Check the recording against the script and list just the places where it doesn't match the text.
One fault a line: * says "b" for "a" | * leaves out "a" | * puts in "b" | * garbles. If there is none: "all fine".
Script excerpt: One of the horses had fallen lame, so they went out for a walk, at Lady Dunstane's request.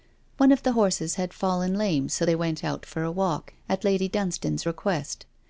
all fine